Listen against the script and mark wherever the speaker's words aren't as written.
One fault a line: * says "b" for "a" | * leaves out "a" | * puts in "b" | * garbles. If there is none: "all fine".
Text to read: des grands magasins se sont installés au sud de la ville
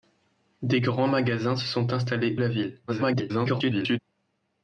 * leaves out "au sud de"
* garbles